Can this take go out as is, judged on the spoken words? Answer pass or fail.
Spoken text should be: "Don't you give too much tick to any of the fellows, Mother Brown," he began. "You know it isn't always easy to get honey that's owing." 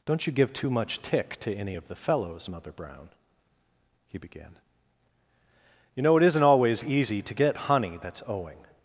pass